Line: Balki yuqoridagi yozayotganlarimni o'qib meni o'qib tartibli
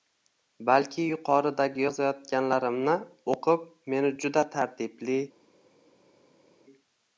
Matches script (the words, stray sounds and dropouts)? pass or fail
fail